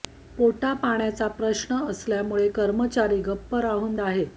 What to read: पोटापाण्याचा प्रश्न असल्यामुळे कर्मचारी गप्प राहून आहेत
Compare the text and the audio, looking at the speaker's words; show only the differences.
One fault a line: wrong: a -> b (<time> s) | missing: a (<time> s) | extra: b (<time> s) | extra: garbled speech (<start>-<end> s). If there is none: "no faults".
no faults